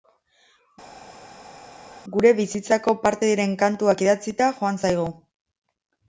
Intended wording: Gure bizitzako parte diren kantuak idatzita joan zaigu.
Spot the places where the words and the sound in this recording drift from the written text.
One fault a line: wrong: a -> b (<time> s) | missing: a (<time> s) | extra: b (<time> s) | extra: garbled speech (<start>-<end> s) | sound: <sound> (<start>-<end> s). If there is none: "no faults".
no faults